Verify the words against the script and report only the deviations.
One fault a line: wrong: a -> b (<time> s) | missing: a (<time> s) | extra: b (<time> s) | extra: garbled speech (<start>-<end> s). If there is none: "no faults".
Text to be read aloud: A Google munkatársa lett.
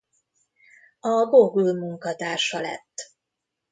no faults